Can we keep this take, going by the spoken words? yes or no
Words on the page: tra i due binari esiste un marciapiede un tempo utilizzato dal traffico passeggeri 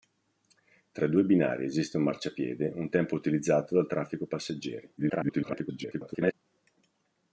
no